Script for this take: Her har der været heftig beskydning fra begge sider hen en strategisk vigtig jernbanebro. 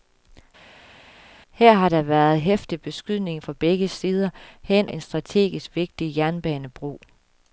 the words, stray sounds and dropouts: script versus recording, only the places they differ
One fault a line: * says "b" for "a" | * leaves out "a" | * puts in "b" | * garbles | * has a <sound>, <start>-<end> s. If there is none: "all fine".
all fine